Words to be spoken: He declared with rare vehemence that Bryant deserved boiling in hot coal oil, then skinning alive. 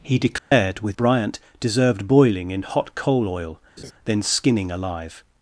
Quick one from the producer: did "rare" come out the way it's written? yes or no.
no